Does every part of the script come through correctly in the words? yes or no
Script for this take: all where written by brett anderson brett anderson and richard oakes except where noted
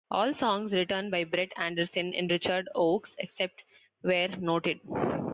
no